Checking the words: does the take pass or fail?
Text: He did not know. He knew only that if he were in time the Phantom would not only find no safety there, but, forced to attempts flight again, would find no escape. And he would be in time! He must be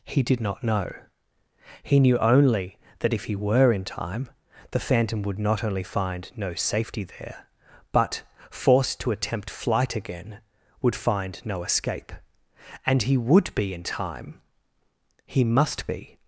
fail